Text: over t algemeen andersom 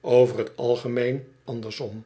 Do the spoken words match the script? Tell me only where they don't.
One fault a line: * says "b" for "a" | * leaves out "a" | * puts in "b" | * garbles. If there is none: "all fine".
all fine